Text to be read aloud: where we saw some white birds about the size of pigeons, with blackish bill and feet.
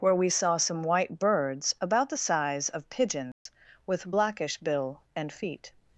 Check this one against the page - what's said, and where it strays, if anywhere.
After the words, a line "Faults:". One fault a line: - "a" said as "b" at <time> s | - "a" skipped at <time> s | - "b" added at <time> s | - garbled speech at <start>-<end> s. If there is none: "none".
where we saw some white birds about the size of pigeons, with blackish bill and feet.
Faults:
none